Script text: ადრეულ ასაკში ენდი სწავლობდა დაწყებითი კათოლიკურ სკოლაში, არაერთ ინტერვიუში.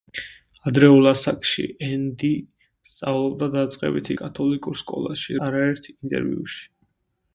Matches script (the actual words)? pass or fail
pass